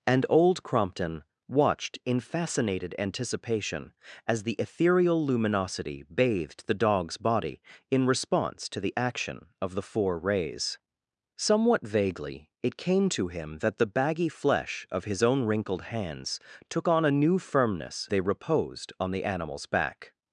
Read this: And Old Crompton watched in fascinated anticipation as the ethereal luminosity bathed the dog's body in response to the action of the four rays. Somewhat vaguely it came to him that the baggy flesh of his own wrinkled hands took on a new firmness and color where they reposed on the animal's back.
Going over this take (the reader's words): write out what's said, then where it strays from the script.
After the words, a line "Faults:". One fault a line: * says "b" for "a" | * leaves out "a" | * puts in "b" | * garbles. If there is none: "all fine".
And Old Crompton watched in fascinated anticipation as the ethereal luminosity bathed the dog's body in response to the action of the four rays. Somewhat vaguely it came to him that the baggy flesh of his own wrinkled hands took on a new firmness they reposed on the animal's back.
Faults:
* leaves out "and color where"